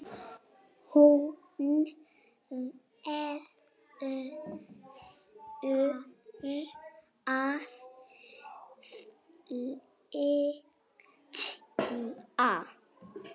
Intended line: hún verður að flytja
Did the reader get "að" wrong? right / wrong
right